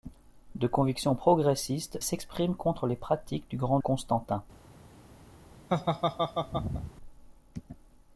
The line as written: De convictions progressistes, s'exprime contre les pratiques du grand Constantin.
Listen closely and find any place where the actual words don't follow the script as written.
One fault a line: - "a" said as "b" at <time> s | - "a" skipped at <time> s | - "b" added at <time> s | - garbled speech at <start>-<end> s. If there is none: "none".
none